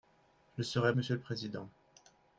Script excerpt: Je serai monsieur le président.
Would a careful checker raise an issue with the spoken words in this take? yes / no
no